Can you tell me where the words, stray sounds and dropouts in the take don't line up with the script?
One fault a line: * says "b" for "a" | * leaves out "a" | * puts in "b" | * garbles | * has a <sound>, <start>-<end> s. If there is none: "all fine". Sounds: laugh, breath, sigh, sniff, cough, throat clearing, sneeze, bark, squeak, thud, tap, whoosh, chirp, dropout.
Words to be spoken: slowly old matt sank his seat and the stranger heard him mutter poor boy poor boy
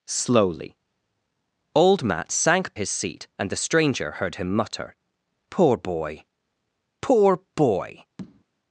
* has a tap, 8.2-8.4 s